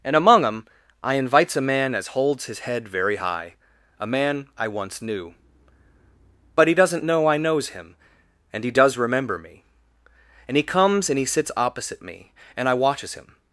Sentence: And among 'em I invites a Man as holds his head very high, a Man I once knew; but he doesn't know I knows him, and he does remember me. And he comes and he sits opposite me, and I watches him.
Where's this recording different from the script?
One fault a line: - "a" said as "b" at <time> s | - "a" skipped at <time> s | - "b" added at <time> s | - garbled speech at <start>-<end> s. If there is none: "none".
none